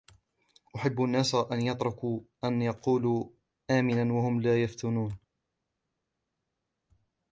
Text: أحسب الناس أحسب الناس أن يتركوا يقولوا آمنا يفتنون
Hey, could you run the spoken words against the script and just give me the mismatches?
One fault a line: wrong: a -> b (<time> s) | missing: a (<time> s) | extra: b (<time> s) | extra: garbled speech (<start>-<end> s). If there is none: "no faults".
wrong: أحسب الناس -> أن يتركوا (1.4 s)
missing: يتركوا (2.6 s)
extra: وهم لا (4.1 s)